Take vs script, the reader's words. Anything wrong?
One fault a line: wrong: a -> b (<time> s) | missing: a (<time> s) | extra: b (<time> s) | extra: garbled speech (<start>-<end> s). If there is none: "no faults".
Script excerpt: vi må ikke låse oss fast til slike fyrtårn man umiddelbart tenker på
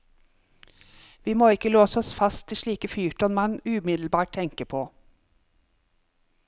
no faults